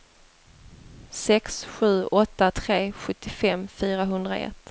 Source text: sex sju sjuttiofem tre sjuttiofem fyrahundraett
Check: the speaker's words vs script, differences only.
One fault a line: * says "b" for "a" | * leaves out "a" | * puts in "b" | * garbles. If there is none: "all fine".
* says "åtta" for "sjuttiofem"